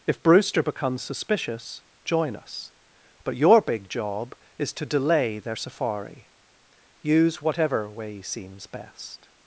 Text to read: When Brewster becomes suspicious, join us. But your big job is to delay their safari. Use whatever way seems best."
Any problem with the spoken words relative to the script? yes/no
yes